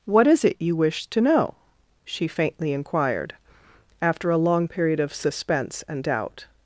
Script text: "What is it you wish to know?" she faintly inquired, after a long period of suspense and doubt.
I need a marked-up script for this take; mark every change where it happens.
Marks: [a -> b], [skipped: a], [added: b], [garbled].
"What is it you wish to know?" she faintly inquired, after a long period of suspense and doubt.